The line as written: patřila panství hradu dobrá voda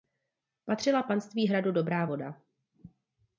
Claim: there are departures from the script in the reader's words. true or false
false